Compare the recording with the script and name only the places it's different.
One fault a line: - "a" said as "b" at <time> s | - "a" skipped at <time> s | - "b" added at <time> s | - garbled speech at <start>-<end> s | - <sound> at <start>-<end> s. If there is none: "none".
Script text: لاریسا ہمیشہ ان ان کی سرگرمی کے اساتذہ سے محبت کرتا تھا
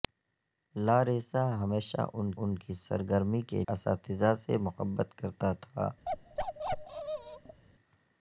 - bark at 6.1-7.6 s